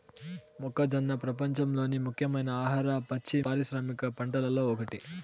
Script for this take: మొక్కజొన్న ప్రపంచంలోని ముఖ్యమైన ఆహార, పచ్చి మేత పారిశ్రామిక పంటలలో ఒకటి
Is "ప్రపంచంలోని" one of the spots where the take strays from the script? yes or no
no